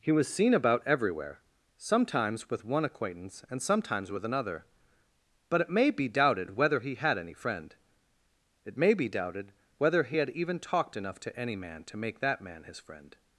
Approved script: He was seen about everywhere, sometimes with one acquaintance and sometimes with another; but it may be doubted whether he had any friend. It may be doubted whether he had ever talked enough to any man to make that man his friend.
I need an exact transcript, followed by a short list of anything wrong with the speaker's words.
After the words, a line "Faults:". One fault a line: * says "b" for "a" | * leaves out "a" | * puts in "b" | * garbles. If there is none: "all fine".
He was seen about everywhere, sometimes with one acquaintance and sometimes with another; but it may be doubted whether he had any friend. It may be doubted whether he had even talked enough to any man to make that man his friend.
Faults:
* says "even" for "ever"